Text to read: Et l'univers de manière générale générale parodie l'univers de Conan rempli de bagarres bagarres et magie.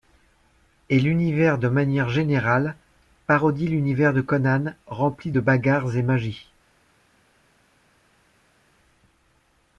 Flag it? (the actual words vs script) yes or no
yes